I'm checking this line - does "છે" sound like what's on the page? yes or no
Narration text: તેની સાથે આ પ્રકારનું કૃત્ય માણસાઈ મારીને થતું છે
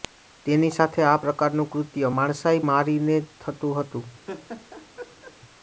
no